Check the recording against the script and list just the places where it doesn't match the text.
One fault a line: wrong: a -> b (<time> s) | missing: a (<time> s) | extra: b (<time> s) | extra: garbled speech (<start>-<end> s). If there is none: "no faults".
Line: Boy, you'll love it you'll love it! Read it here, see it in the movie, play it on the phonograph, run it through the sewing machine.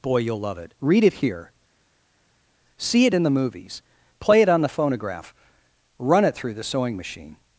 missing: you'll love it (0.7 s)
wrong: movie -> movies (3.3 s)